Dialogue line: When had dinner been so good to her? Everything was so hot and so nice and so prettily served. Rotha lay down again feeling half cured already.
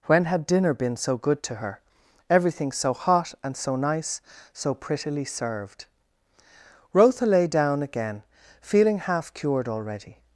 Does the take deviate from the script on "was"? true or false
true